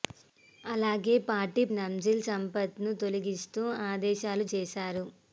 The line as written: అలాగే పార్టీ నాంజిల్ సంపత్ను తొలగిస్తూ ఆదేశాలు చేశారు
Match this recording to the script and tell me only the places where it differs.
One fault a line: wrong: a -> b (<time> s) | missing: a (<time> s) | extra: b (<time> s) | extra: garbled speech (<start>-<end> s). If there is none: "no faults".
no faults